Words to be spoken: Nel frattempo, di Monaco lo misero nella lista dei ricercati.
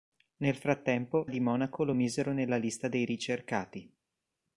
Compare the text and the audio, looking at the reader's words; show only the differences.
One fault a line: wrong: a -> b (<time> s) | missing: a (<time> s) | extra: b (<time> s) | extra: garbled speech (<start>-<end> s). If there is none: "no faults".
no faults